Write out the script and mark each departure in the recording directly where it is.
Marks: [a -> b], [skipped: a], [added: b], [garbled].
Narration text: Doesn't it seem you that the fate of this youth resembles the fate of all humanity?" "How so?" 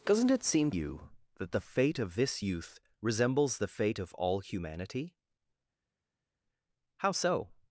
Doesn't it seem you that the fate of this youth resembles the fate of all humanity?" "How so?"